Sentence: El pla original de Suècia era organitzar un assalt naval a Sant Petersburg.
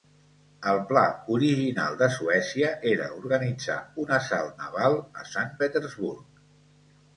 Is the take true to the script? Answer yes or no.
yes